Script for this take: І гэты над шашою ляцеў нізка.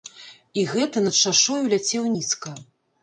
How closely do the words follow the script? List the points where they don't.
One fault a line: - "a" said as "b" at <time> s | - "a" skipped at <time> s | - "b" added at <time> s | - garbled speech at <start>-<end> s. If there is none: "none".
none